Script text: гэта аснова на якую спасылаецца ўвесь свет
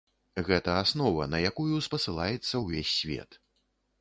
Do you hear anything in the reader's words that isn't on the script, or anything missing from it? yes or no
no